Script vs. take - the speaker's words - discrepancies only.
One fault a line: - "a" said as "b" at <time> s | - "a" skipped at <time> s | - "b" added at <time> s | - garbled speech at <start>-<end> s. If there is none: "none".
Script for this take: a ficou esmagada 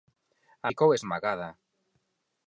none